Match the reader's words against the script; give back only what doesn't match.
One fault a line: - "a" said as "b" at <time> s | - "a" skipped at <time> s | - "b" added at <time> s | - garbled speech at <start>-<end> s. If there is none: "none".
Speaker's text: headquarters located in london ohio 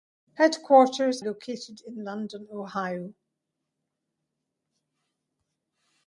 none